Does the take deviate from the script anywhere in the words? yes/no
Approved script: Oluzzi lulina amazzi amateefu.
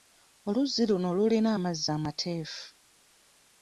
yes